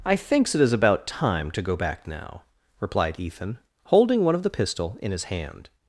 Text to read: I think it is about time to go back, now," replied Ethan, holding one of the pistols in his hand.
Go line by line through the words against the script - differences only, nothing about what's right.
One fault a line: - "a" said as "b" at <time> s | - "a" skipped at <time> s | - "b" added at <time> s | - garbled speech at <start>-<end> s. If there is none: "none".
- "think" said as "thinks" at 0.1 s
- "pistols" said as "pistol" at 4.5 s